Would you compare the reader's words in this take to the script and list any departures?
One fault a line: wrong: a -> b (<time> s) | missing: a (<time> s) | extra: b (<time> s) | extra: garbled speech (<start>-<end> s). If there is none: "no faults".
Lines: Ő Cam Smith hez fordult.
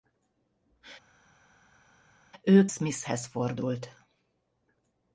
missing: Cam (2.7 s)